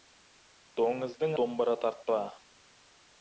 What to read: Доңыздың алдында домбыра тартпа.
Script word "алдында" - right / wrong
wrong